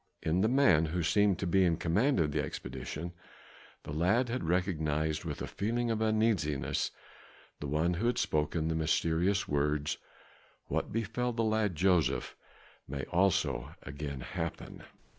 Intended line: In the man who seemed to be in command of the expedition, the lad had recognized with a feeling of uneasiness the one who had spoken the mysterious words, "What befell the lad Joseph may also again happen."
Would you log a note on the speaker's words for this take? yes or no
no